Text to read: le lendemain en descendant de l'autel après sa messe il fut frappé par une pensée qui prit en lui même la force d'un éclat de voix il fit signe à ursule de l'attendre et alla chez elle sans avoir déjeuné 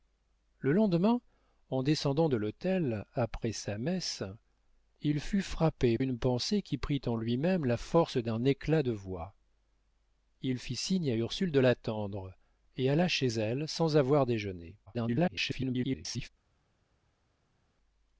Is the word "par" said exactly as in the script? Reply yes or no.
no